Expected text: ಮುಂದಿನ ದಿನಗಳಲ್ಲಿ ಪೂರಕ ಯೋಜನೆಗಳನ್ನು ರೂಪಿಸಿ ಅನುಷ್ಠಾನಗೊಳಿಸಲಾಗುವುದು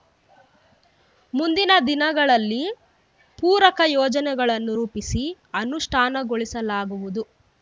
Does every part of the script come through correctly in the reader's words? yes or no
yes